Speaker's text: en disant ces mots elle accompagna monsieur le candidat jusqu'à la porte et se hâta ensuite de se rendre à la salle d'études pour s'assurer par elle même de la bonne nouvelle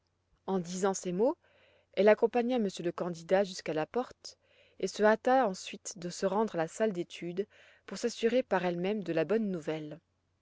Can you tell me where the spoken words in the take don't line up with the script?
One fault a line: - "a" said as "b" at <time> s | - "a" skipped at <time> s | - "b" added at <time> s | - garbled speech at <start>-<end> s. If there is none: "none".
none